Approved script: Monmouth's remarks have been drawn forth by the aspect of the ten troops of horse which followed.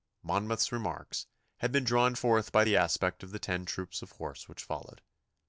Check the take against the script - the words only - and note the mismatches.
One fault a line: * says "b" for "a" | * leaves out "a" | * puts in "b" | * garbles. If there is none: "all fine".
* says "had" for "have"